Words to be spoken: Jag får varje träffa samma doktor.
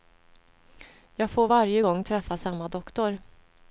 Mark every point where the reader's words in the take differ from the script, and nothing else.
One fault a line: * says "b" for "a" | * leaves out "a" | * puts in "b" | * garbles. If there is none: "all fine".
* puts in "gång"